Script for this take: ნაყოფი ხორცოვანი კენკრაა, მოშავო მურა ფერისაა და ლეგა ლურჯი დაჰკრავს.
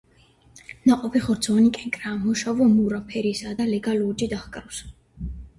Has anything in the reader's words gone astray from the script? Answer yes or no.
no